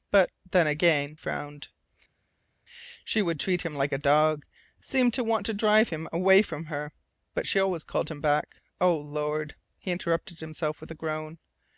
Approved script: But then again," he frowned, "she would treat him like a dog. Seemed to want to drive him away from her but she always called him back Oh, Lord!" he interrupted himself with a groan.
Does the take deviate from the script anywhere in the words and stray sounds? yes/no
yes